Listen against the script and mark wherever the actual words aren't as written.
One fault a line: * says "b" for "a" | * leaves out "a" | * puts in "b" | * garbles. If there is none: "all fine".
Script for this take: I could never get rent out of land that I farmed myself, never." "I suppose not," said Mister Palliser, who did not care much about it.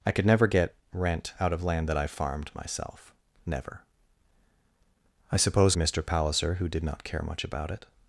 * leaves out "not said"